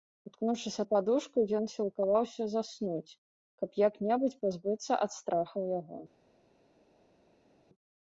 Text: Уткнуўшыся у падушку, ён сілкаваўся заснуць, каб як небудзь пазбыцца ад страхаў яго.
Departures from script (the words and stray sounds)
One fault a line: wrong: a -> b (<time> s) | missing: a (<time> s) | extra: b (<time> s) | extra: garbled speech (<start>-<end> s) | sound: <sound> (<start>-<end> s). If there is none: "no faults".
no faults